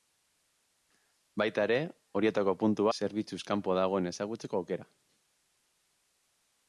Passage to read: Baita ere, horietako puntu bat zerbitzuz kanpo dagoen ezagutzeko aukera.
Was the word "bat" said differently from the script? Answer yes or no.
yes